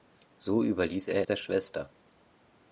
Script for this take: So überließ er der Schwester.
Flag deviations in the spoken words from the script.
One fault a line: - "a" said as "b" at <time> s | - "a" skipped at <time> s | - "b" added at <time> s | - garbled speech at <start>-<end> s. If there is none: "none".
none